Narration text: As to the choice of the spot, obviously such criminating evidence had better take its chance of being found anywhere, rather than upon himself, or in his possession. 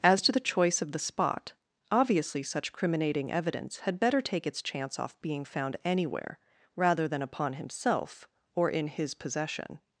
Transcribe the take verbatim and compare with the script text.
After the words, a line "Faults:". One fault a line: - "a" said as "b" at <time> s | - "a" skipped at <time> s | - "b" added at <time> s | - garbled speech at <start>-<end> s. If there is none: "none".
As to the choice of the spot, obviously such criminating evidence had better take its chance off being found anywhere, rather than upon himself, or in his possession.
Faults:
- "of" said as "off" at 5.0 s